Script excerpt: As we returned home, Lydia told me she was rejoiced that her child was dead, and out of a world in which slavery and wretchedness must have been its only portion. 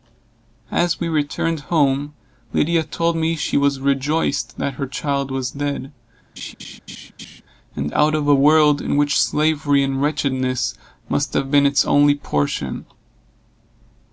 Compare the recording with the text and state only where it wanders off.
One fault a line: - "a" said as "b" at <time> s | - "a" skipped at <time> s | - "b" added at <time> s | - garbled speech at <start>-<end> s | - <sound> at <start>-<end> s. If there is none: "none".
- laugh at 6.4-7.4 s